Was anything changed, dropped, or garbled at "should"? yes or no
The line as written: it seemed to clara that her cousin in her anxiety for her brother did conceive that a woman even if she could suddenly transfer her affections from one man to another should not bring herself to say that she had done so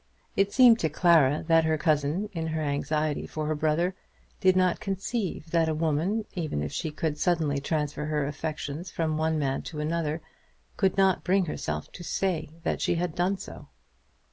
yes